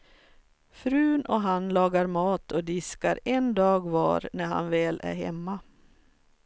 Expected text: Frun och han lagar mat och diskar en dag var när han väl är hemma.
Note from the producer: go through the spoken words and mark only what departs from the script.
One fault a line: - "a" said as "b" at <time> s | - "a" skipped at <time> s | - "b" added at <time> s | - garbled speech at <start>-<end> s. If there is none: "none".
none